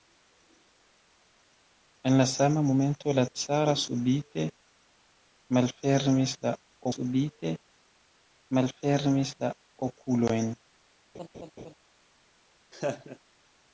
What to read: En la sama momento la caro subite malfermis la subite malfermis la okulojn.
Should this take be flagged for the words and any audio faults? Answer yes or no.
yes